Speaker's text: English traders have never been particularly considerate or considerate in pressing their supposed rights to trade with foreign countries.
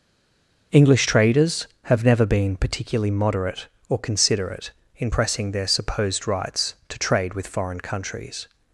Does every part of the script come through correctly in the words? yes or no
no